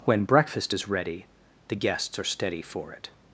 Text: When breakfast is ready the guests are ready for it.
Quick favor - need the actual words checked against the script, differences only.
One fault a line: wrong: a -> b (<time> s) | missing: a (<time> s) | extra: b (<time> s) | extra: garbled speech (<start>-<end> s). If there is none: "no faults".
wrong: ready -> steady (2.2 s)